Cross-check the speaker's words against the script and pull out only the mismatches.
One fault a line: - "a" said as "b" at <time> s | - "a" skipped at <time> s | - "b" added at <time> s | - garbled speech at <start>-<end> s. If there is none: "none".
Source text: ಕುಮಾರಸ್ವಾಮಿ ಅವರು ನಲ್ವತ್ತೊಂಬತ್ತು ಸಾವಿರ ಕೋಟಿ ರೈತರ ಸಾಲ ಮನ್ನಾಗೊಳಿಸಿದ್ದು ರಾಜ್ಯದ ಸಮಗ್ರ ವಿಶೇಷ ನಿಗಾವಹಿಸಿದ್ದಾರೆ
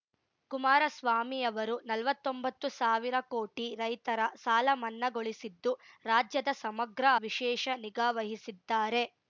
none